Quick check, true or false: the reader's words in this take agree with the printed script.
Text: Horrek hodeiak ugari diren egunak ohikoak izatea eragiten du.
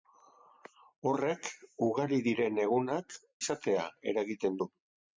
false